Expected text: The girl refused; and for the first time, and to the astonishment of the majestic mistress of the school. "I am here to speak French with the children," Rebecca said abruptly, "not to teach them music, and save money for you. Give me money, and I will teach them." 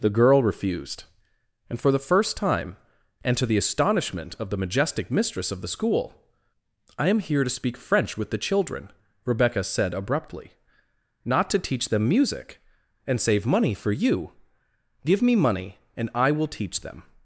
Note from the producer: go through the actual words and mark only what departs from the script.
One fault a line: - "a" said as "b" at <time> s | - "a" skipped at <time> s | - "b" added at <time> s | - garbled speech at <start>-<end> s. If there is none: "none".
none